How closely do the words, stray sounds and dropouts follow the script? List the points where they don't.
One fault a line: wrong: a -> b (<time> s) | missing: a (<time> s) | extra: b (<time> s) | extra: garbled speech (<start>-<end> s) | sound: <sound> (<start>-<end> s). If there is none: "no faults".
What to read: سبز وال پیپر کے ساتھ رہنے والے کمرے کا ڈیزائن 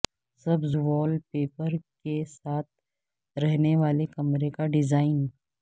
no faults